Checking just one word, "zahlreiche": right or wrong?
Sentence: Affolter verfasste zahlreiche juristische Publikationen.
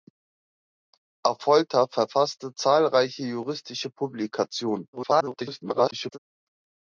right